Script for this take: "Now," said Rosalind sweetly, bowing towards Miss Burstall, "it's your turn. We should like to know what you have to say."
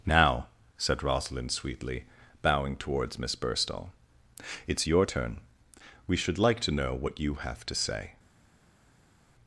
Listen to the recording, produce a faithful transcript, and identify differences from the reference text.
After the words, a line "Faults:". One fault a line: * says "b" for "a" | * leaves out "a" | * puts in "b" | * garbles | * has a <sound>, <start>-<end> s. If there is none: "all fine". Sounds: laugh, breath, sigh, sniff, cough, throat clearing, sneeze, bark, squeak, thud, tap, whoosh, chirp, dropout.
"Now," said Rosalind sweetly, bowing towards Miss Burstall, "it's your turn. We should like to know what you have to say."
Faults:
all fine